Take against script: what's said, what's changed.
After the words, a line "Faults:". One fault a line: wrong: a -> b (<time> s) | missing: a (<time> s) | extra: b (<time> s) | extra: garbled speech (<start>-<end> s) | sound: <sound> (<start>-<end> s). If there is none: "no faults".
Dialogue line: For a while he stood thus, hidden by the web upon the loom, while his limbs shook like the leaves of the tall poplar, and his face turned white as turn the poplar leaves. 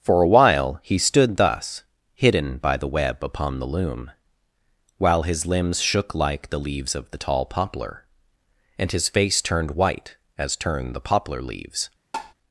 For a while he stood thus, hidden by the web upon the loom, while his limbs shook like the leaves of the tall poplar, and his face turned white as turn the poplar leaves.
Faults:
sound: tap (12.1-12.3 s)